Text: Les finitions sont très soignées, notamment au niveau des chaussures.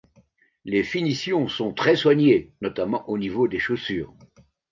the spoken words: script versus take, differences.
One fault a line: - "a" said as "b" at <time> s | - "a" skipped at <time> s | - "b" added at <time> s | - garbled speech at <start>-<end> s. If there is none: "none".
none